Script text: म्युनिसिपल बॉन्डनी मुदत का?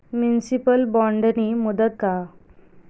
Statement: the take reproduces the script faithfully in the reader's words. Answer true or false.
true